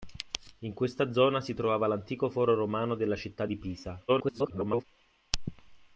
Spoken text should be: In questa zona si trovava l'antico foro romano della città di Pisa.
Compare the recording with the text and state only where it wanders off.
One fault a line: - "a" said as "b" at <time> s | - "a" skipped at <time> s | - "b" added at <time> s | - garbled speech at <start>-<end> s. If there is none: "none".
- garbled speech at 4.1-4.8 s